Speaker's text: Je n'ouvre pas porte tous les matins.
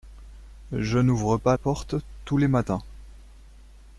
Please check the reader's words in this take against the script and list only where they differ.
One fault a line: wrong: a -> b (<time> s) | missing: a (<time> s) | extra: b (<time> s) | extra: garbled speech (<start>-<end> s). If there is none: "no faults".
no faults